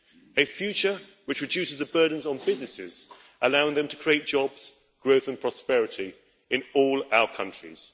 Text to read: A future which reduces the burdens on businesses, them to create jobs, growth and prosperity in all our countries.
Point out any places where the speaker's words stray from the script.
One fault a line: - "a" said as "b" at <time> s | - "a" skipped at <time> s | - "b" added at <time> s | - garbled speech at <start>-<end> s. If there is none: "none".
- "allowing" added at 3.4 s